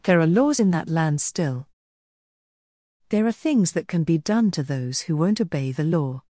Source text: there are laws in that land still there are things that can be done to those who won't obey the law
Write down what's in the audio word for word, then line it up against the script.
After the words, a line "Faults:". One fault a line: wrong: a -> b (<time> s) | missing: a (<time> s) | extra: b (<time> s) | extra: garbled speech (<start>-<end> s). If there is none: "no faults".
there are laws in that land still there are things that can be done to those who won't obey the law
Faults:
no faults